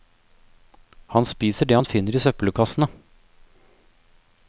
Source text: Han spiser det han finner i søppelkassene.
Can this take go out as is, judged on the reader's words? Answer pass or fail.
pass